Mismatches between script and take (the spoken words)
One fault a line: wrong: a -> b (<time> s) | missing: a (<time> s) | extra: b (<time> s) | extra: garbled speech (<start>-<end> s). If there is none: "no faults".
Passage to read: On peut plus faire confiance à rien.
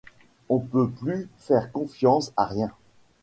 no faults